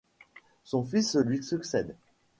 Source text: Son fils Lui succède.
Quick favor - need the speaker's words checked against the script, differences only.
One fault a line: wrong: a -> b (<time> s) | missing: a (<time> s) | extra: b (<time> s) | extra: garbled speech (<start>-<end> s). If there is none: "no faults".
no faults